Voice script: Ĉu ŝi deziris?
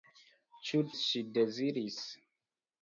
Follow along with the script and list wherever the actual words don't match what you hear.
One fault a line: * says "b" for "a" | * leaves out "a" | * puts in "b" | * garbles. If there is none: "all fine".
all fine